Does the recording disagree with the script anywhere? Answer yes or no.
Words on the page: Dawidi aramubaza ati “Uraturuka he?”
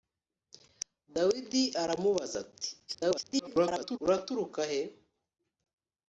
yes